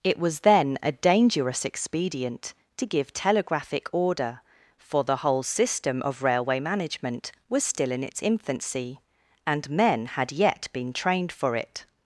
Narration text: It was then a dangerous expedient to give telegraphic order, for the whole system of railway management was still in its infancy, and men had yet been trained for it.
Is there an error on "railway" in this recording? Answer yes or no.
no